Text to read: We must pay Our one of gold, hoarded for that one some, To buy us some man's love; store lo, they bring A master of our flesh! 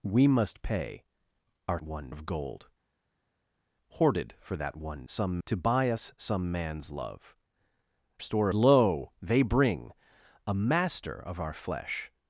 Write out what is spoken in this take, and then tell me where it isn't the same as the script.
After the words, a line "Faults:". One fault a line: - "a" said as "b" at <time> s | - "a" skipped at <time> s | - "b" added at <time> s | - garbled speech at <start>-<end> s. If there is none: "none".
We must pay Our one of gold, hoarded for that one some, To buy us some man's love; store lo, they bring A master of our flesh!
Faults:
none